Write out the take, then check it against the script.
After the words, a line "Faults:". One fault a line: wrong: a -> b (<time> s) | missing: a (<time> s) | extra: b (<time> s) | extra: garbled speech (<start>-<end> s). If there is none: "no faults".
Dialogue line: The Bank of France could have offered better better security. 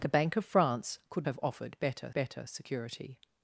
The Bank of France could have offered better better security.
Faults:
no faults